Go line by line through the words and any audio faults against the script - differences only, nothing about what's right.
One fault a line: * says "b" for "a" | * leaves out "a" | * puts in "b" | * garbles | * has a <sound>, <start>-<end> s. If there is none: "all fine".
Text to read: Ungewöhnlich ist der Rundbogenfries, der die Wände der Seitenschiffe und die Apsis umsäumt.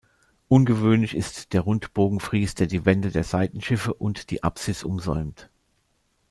all fine